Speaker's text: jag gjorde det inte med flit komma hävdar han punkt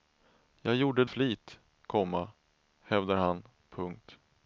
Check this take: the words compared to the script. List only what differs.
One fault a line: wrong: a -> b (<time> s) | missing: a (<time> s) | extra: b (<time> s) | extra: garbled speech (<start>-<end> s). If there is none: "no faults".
missing: det inte med (1.1 s)